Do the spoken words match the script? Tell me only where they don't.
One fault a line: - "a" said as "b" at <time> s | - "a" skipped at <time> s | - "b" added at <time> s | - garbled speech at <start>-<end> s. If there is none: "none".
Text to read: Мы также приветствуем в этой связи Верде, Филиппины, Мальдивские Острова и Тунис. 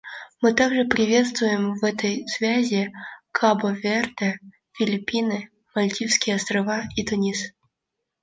- "Кабо" added at 3.3 s